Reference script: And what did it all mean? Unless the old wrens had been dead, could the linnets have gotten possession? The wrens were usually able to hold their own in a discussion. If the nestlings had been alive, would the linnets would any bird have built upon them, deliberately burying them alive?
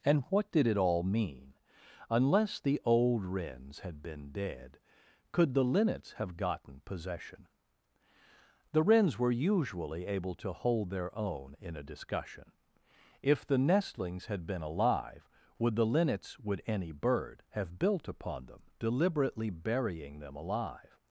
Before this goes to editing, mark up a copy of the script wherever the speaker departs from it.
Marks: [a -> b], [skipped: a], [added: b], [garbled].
And what did it all mean? Unless the old wrens had been dead, could the linnets have gotten possession? The wrens were usually able to hold their own in a discussion. If the nestlings had been alive, would the linnets would any bird have built upon them, deliberately burying them alive?